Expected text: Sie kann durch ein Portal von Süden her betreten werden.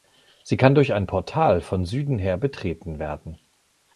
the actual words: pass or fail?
pass